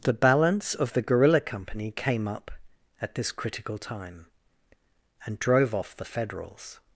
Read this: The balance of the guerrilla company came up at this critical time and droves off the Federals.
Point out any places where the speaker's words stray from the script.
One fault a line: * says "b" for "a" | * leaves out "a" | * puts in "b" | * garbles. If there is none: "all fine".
* says "drove" for "droves"